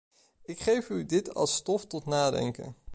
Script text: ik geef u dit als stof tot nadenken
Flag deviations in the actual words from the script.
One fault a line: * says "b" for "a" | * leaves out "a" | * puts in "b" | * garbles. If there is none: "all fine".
all fine